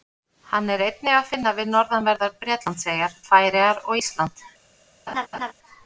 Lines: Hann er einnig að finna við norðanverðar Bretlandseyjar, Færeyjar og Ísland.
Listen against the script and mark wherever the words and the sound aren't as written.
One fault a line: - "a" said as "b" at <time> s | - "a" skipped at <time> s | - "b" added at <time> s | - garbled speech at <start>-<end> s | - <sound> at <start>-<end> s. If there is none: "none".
- laugh at 5.1-5.5 s